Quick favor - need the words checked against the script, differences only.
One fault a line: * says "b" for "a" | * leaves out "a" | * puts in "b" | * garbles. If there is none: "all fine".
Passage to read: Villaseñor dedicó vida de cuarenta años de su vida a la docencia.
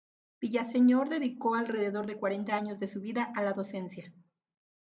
* says "alrededor" for "vida"